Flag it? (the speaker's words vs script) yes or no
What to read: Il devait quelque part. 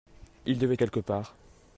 no